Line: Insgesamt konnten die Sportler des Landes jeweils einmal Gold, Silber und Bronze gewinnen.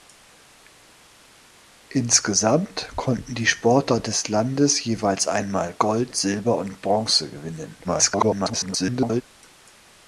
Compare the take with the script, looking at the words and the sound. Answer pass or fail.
fail